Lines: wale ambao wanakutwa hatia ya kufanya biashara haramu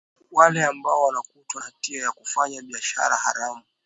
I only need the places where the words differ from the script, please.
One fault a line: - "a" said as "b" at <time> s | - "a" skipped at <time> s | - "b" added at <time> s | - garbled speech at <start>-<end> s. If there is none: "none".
none